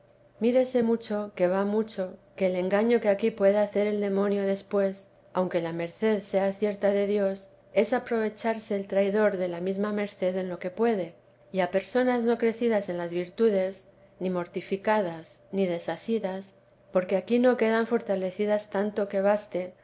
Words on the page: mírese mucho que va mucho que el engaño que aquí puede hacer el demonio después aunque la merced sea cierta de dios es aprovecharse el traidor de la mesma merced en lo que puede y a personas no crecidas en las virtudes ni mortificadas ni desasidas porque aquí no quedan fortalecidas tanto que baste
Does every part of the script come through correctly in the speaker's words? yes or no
yes